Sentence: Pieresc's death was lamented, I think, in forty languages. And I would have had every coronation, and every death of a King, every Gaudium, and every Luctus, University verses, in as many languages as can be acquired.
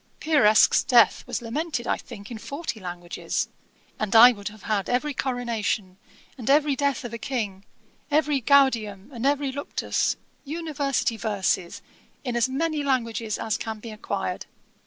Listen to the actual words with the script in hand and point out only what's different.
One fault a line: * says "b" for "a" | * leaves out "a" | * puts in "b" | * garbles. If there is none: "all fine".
all fine